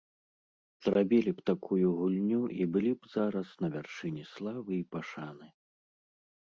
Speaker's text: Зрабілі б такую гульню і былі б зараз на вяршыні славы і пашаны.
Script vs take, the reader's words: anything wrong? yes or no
no